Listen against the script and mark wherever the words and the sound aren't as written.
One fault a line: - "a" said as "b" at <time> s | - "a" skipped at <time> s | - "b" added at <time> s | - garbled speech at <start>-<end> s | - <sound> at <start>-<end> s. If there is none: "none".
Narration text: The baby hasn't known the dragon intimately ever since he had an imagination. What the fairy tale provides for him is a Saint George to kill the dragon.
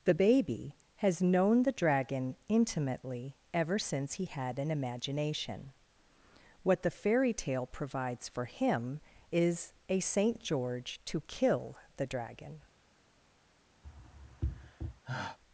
- "hasn't" said as "has" at 1.0 s
- sigh at 13.8-15.4 s